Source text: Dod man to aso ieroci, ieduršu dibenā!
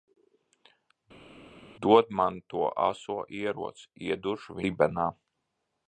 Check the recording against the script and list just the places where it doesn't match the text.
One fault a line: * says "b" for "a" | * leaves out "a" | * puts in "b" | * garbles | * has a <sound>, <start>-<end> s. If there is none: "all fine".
all fine